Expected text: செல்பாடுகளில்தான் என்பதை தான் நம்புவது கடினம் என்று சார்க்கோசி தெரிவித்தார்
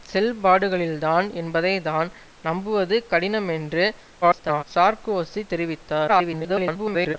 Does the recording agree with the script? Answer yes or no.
no